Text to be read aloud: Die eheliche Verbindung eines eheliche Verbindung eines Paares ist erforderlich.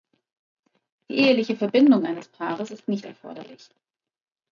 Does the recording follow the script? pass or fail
fail